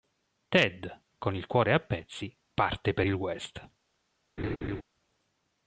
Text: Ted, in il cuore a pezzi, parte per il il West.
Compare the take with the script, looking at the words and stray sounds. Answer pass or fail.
fail